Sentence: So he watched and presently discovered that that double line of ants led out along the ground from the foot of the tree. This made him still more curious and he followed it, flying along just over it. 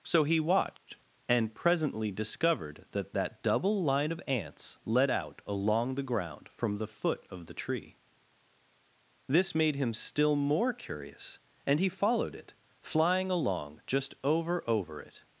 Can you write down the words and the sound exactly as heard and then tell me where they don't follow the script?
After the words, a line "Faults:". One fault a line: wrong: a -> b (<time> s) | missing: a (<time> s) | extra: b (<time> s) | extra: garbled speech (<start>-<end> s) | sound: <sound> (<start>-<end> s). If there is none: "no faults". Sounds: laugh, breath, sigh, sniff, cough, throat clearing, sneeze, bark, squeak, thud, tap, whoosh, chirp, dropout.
So he watched and presently discovered that that double line of ants led out along the ground from the foot of the tree. This made him still more curious and he followed it, flying along just over over it.
Faults:
sound: dropout (0.8-0.9 s)
extra: over (14.7 s)